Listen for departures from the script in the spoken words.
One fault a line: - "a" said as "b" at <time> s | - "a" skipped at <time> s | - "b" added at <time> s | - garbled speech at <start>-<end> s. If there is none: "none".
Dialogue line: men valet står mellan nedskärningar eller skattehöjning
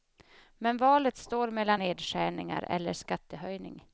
none